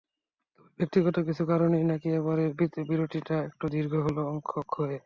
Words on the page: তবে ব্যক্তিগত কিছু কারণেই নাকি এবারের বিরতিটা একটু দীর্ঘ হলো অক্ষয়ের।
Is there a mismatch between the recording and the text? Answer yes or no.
no